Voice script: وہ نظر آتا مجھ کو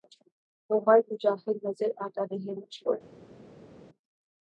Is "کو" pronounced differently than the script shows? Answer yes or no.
no